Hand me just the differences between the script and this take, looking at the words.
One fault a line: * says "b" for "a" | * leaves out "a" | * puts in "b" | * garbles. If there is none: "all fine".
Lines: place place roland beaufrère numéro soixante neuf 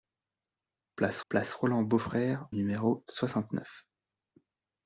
all fine